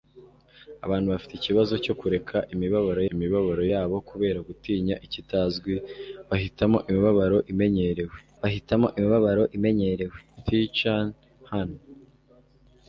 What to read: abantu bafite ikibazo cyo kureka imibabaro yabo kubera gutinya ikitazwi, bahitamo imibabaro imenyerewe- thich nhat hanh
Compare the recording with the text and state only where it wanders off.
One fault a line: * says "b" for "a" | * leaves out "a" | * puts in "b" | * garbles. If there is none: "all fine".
* puts in "imibabaro"
* puts in "bahitamo imibabaro imenyerewe"